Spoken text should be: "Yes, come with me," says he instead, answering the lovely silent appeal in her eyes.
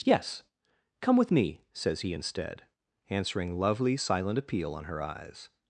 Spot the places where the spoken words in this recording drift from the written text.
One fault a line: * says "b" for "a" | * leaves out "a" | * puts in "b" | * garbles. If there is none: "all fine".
* leaves out "the"
* says "on" for "in"